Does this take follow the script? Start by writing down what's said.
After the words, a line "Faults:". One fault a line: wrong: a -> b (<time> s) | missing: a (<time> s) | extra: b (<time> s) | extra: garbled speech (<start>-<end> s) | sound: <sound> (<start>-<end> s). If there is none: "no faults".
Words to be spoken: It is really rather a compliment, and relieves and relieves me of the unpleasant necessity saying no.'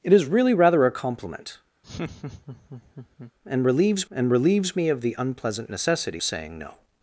It is really rather a compliment, and relieves and relieves me of the unpleasant necessity saying no.'
Faults:
sound: laugh (1.8-3.3 s)